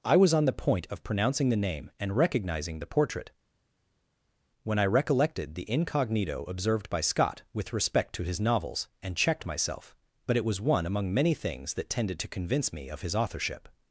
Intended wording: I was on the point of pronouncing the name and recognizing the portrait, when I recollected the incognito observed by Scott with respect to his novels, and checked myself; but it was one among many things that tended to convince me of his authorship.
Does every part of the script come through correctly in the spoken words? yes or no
yes